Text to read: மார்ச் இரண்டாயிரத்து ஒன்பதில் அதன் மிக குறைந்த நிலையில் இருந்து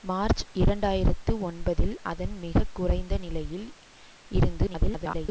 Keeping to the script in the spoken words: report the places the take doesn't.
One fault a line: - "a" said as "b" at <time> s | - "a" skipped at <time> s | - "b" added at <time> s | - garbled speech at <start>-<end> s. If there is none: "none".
- garbled speech at 4.7-5.3 s